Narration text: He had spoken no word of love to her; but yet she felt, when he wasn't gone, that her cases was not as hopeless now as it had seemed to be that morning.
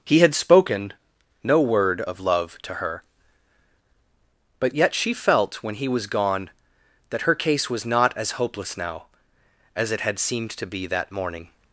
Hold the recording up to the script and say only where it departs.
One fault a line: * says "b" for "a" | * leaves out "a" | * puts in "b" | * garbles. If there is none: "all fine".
* says "was" for "wasn't"
* says "case" for "cases"